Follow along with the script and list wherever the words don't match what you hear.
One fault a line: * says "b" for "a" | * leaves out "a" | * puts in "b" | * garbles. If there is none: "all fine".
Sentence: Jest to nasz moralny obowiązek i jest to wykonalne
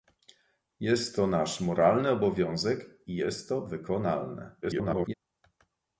* garbles